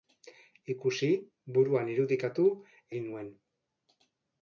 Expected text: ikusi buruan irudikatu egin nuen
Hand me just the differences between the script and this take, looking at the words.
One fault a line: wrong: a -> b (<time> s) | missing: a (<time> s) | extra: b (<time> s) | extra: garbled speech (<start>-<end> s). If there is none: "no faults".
no faults